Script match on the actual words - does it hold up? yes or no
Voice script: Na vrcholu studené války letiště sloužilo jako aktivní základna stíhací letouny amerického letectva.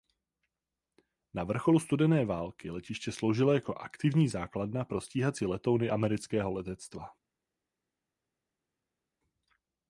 no